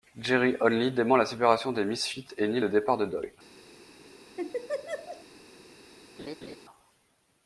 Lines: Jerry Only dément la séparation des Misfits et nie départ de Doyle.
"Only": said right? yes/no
yes